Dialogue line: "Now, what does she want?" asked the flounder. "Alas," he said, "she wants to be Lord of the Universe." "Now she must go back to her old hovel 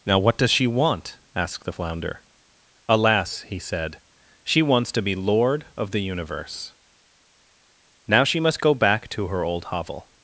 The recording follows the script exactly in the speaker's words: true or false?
true